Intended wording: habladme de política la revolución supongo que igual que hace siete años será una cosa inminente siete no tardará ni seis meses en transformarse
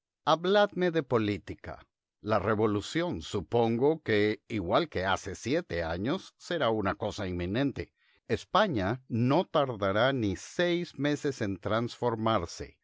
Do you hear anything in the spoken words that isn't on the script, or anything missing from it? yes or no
yes